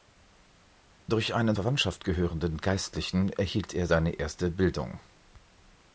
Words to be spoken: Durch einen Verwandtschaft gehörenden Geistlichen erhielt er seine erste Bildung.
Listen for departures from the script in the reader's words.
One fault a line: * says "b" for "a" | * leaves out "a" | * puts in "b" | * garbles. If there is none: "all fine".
all fine